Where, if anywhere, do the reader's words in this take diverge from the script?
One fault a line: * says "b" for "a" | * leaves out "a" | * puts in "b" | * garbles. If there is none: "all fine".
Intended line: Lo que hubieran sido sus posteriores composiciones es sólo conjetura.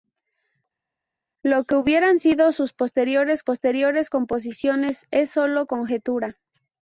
* puts in "posteriores"